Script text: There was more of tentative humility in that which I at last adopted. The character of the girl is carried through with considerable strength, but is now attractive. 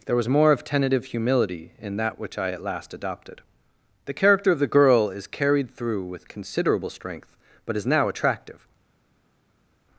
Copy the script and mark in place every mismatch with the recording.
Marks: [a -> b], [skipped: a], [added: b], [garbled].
There was more of tentative humility in that which I at last adopted. The character of the girl is carried through with considerable strength, but is now attractive.